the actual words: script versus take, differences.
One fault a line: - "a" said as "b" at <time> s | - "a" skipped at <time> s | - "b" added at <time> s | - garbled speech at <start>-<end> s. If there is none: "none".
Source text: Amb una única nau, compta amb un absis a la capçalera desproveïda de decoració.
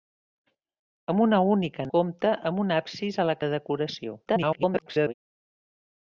- "nau" skipped at 1.9 s
- "capçalera desproveïda" skipped at 3.4 s
- garbled speech at 4.3-5.1 s